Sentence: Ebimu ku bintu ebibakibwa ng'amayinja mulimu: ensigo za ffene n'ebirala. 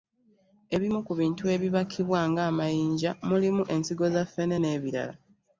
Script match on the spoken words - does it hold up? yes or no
yes